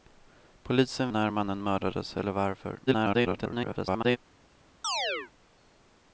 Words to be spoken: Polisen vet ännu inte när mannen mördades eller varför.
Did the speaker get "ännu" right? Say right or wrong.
wrong